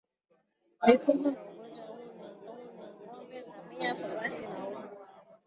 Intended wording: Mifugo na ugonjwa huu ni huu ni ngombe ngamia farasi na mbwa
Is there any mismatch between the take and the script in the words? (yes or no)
no